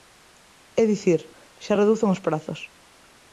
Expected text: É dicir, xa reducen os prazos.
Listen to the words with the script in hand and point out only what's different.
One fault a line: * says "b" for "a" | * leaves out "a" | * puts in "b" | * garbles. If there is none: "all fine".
all fine